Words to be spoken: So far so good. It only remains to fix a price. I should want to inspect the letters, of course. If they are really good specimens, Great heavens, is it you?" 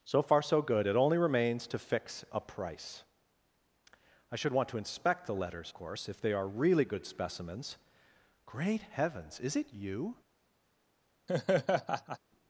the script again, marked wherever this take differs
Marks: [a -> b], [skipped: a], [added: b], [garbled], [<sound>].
So far so good. It only remains to fix a price. I should want to inspect the letters, [skipped: of] course. If they are really good specimens, Great heavens, is it you?" [laugh]